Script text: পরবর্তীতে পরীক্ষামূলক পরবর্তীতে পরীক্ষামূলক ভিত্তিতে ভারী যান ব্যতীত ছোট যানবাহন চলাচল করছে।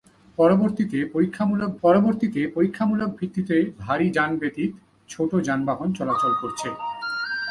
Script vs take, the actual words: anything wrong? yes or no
no